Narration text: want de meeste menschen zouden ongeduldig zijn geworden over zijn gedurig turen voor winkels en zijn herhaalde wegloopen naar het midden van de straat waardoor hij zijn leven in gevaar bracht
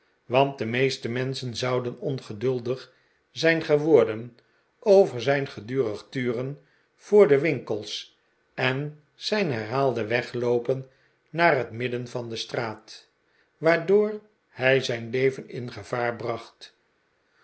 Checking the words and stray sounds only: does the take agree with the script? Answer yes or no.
no